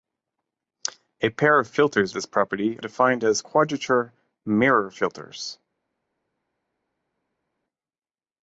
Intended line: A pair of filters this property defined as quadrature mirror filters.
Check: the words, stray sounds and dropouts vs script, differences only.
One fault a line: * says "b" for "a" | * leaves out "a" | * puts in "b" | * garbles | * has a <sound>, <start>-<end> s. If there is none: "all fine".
all fine